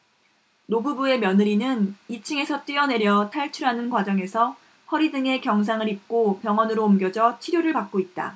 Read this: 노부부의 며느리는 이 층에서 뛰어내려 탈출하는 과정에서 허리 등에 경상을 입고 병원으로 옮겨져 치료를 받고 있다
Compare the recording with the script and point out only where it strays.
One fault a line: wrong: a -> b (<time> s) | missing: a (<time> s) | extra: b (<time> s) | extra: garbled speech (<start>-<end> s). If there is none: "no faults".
no faults